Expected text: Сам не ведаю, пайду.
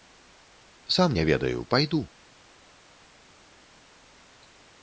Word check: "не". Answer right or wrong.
right